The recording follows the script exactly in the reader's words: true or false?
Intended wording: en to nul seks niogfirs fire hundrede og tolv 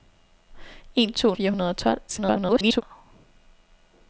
false